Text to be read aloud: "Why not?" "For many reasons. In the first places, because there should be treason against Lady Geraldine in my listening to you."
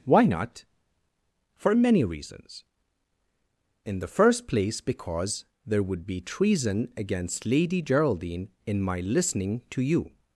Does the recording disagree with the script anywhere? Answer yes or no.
yes